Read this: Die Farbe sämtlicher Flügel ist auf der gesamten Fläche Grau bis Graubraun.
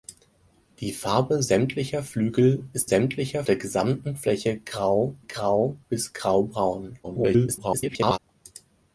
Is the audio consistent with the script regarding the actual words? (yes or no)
no